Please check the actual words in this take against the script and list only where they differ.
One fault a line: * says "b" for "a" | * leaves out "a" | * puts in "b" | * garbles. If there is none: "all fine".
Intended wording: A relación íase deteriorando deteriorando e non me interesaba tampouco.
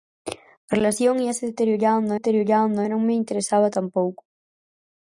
all fine